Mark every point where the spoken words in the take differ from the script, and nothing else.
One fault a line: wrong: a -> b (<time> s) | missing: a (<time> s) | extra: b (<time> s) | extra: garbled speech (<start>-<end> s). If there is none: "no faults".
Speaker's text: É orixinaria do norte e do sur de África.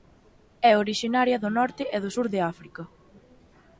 no faults